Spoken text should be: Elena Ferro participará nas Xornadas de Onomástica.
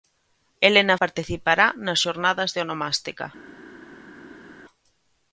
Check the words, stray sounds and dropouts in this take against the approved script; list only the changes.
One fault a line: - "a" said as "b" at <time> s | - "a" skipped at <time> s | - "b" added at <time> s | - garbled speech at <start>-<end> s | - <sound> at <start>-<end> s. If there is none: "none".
- "Ferro" skipped at 1.0 s